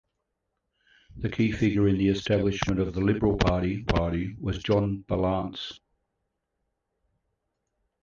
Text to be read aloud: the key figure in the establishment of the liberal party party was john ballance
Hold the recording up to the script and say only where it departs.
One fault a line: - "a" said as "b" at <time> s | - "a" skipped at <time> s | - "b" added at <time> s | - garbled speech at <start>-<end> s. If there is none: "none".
none